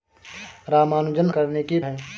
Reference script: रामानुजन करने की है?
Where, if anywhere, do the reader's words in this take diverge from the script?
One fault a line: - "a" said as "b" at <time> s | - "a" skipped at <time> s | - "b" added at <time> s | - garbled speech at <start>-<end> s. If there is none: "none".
none